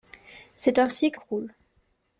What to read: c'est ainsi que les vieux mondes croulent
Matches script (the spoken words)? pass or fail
fail